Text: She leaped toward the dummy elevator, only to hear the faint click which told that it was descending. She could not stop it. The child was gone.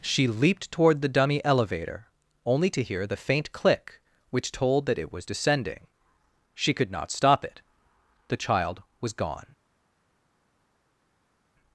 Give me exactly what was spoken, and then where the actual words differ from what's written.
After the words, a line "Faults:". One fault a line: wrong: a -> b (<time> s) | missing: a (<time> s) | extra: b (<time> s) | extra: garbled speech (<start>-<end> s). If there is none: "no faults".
She leaped toward the dummy elevator, only to hear the faint click which told that it was descending. She could not stop it. The child was gone.
Faults:
no faults